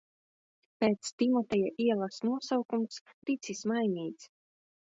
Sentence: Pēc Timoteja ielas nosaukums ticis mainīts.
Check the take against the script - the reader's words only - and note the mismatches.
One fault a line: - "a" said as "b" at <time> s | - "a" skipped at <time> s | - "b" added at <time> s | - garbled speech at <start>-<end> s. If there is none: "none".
none